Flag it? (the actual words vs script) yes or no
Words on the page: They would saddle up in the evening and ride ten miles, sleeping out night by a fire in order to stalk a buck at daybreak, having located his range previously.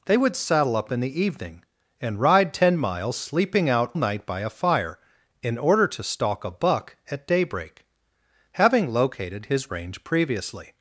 no